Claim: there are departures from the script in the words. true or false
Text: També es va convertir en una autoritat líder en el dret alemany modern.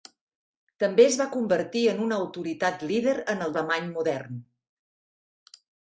true